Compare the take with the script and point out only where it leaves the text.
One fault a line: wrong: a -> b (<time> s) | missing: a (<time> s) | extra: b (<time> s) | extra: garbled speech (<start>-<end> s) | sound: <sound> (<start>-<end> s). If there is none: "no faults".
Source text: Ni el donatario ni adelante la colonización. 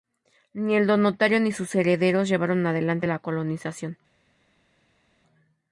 extra: sus herederos llevaron (1.5 s)